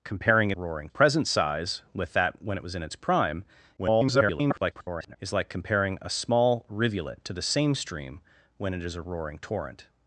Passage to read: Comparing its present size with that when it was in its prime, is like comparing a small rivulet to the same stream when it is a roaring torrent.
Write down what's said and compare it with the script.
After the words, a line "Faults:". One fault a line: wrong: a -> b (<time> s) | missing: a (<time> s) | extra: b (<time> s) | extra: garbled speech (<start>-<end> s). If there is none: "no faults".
Comparing roaring present size with that when it was in its prime, [garbled] is like comparing a small rivulet to the same stream when it is a roaring torrent.
Faults:
wrong: its -> roaring (0.5 s)
extra: garbled speech (3.8-5.2 s)